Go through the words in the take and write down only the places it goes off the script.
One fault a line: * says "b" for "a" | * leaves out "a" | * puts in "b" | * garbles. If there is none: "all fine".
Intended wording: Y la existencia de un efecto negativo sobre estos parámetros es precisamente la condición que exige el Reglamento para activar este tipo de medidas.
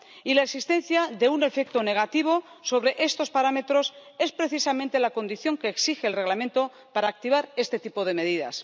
all fine